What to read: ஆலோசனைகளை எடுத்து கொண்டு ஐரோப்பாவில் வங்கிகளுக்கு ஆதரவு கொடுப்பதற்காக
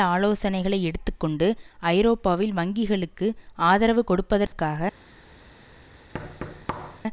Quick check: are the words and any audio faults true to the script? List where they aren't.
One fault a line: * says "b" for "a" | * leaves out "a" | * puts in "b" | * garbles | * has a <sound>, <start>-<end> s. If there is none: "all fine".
* has a dropout, 4.5-4.5 s
* has a thud, 6.1-7.0 s